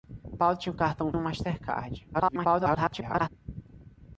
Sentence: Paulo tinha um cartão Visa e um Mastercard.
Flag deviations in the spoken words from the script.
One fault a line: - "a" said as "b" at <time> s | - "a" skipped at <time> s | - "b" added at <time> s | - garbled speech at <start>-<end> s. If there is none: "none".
- "Visa" skipped at 1.1 s
- garbled speech at 2.1-3.3 s